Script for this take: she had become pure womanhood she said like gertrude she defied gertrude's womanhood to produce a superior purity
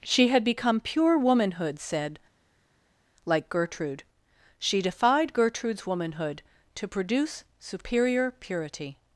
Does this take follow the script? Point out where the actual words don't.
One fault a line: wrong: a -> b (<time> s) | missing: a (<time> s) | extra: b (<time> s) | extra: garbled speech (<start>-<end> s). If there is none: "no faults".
missing: she (1.8 s)
missing: a (7.4 s)